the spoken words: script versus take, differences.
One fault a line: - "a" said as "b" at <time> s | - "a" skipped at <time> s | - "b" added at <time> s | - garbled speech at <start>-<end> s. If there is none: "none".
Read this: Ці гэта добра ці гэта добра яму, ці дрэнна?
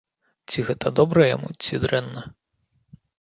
- "ці гэта добра" skipped at 1.2 s